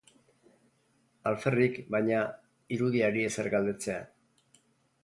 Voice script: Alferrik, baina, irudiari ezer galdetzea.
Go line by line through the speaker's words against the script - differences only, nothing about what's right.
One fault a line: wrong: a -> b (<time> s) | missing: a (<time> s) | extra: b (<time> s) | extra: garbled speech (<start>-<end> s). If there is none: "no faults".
no faults